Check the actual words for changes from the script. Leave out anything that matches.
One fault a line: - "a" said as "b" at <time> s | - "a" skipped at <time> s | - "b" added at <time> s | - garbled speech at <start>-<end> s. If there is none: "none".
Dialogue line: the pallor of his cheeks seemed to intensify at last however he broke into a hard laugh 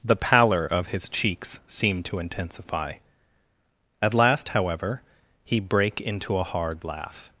- "broke" said as "brake" at 5.6 s